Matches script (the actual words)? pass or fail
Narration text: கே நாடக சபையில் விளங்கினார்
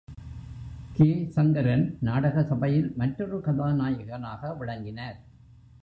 fail